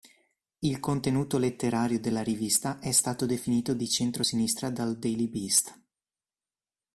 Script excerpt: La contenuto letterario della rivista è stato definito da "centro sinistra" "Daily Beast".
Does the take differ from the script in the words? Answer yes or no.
yes